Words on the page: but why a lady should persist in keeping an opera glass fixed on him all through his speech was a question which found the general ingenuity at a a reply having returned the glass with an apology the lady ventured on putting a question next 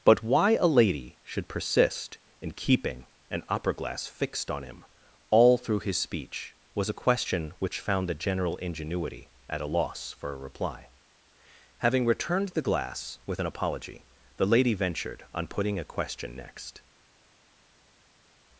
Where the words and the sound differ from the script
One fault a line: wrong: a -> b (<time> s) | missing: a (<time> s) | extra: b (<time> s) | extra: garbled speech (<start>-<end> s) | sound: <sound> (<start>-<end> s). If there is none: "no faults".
extra: loss for (9.7 s)